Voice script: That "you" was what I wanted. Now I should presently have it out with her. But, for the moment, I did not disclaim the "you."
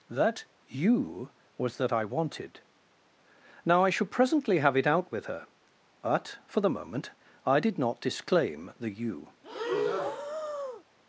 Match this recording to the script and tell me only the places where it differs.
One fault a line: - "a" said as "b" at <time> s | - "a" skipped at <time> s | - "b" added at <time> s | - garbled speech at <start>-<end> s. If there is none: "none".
- "what" said as "that" at 1.8 s